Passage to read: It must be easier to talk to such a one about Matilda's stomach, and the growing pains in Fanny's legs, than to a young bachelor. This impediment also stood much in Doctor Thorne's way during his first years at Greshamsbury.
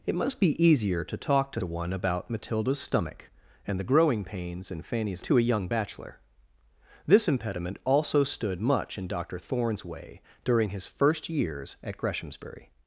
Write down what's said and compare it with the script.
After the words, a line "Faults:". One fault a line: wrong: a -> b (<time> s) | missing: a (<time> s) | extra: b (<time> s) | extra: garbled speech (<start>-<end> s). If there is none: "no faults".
It must be easier to talk to a one about Matilda's stomach, and the growing pains in Fanny's to a young bachelor. This impediment also stood much in Doctor Thorne's way during his first years at Greshamsbury.
Faults:
missing: such (1.6 s)
missing: legs than (5.3 s)